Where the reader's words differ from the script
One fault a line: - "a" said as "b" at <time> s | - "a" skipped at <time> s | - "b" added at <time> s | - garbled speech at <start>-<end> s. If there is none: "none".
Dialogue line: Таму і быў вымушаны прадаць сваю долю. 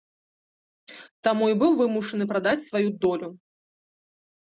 none